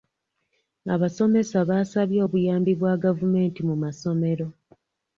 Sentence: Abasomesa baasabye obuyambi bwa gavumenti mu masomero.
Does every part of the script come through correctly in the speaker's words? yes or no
yes